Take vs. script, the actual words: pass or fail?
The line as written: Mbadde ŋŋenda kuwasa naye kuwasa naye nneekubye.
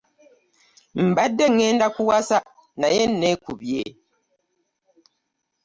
fail